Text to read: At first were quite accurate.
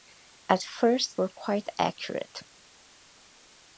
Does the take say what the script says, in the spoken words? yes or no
yes